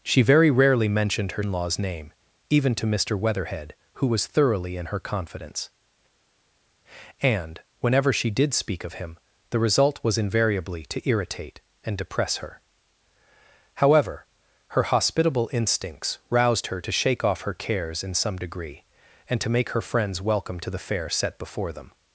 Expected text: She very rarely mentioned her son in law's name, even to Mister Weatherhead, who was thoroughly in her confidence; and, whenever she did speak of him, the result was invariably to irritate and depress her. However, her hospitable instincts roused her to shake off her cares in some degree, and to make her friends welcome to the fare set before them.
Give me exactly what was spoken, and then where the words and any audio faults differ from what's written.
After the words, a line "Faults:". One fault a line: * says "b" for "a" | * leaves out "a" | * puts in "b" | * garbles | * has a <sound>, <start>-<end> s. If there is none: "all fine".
She very rarely mentioned her in law's name, even to Mister Weatherhead, who was thoroughly in her confidence; and, whenever she did speak of him, the result was invariably to irritate and depress her. However, her hospitable instincts roused her to shake off her cares in some degree, and to make her friends welcome to the fare set before them.
Faults:
* leaves out "son"